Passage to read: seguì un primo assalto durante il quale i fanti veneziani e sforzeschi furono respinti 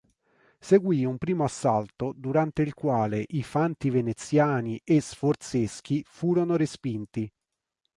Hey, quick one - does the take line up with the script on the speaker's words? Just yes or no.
yes